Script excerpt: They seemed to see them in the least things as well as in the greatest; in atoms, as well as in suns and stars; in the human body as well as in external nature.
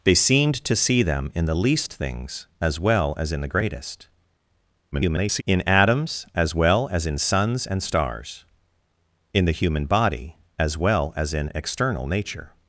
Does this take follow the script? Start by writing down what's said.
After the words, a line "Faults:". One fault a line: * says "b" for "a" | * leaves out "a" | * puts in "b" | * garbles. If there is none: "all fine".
They seemed to see them in the least things as well as in the greatest; [garbled] in atoms, as well as in suns and stars; in the human body as well as in external nature.
Faults:
* garbles